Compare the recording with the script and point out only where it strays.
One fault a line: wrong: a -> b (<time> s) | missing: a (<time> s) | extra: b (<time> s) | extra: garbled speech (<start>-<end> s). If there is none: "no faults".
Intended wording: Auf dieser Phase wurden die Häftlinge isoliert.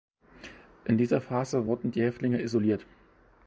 wrong: Auf -> In (0.8 s)